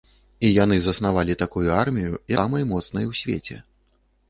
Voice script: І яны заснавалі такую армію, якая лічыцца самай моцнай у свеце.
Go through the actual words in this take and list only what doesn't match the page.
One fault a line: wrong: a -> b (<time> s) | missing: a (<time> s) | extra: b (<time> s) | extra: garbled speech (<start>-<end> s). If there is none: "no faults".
missing: якая лічыцца (2.1 s)